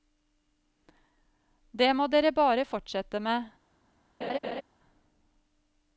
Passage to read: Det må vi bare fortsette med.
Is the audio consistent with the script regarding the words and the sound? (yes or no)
no